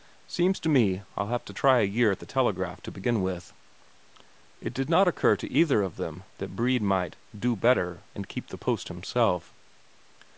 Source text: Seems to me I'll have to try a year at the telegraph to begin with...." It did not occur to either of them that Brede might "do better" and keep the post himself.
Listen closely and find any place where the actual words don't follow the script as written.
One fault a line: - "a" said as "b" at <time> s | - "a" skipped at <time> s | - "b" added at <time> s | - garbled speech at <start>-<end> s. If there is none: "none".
none